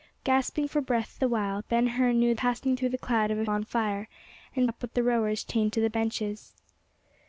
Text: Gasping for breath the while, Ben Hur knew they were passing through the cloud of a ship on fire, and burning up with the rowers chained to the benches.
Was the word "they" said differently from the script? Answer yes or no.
yes